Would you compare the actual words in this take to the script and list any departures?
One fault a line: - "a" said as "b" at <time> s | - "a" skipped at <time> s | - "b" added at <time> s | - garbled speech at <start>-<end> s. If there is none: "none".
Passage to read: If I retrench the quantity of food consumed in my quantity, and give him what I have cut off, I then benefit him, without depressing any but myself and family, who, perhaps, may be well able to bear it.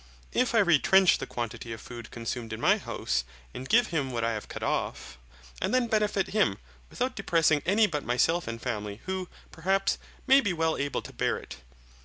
- "quantity" said as "house" at 2.8 s